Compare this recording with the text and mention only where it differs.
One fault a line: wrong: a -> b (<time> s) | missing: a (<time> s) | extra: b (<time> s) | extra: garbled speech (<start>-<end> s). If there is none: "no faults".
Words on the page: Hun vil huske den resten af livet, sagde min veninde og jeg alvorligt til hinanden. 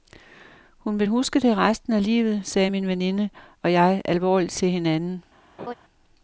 wrong: den -> det (1.4 s)